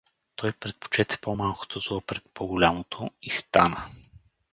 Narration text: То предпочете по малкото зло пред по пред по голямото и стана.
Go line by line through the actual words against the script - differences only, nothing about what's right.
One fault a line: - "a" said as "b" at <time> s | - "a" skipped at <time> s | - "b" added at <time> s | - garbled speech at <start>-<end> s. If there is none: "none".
- "То" said as "Той" at 0.3 s
- "пред по" skipped at 2.5 s